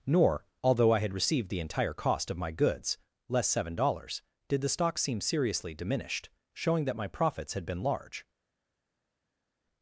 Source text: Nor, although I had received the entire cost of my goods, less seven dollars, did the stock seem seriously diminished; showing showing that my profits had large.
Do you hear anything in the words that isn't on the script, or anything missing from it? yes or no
yes